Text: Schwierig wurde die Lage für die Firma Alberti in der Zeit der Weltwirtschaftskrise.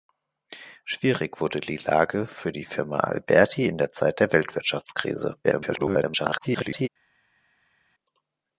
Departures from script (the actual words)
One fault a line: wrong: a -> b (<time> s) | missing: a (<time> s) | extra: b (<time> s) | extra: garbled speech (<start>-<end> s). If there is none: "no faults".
extra: garbled speech (5.4-6.9 s)